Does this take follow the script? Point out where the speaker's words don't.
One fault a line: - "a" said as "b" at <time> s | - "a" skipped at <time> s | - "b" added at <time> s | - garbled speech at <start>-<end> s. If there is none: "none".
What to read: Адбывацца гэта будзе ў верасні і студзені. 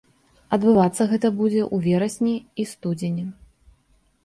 none